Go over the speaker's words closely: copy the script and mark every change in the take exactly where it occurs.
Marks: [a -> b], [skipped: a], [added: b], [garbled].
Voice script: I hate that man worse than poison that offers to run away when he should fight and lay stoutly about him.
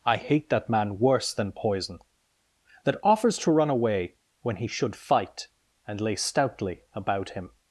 I hate that man worse than poison that offers to run away when he should fight and lay stoutly about him.